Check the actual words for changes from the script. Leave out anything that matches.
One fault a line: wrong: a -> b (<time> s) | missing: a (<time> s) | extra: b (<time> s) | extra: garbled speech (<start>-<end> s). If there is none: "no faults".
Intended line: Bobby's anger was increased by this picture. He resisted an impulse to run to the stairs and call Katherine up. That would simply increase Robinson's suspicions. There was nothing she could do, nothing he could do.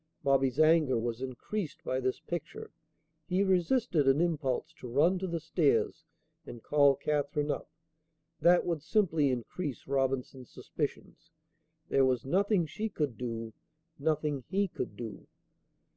no faults